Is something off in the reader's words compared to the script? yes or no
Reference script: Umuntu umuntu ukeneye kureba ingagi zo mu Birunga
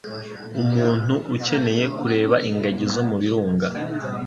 yes